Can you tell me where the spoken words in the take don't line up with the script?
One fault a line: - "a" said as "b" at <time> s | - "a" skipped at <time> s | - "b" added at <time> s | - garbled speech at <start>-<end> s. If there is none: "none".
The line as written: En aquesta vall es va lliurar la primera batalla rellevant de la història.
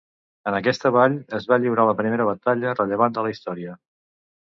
none